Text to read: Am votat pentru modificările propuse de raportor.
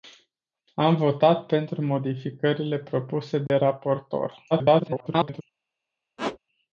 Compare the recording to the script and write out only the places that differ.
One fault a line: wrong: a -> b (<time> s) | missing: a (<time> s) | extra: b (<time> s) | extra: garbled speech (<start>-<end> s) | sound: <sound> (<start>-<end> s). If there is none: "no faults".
sound: dropout (3.5-3.5 s)
extra: garbled speech (4.5-5.4 s)
sound: squeak (6.2-6.4 s)